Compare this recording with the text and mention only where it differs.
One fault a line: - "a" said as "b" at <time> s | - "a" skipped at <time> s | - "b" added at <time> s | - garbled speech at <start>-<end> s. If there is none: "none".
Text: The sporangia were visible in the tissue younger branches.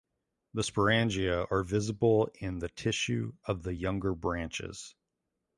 - "were" said as "are" at 1.5 s
- "of the" added at 3.4 s